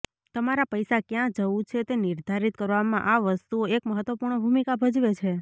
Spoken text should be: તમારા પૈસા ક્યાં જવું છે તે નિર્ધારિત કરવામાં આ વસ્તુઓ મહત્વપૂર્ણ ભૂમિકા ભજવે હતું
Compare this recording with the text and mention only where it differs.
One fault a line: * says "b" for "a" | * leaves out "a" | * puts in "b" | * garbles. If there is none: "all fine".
* puts in "એક"
* says "છે" for "હતું"